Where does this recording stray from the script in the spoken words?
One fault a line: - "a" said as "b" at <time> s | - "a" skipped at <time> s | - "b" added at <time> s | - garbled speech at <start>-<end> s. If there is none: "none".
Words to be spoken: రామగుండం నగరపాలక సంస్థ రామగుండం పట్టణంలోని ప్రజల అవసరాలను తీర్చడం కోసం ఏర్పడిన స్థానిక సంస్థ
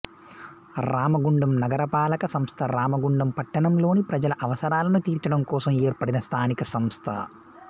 none